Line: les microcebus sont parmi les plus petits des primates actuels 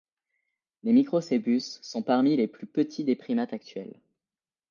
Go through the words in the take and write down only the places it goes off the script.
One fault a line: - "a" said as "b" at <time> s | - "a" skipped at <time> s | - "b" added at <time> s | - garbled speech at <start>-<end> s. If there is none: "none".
none